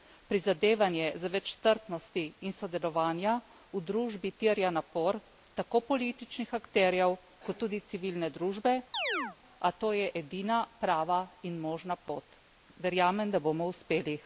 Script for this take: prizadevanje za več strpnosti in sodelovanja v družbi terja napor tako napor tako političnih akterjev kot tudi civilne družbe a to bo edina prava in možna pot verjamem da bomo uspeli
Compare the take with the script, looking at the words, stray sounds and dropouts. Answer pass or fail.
fail